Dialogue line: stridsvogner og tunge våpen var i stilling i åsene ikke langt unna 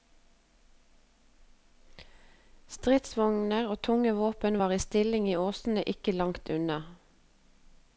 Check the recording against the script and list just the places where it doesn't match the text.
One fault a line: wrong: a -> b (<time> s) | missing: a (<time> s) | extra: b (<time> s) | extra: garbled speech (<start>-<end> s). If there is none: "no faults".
no faults